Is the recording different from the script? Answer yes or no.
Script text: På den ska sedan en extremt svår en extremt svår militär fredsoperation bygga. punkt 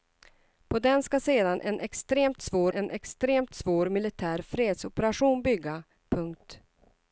no